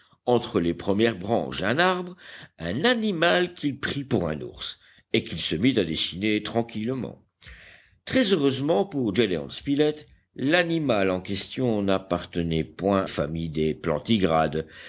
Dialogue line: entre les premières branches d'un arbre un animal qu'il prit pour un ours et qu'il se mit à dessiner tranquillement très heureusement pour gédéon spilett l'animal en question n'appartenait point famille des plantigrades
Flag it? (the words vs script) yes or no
no